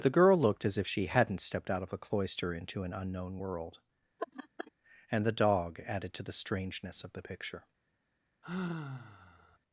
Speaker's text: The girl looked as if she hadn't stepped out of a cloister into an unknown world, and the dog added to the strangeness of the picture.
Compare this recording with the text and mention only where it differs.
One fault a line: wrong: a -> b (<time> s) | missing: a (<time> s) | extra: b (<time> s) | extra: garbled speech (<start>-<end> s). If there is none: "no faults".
no faults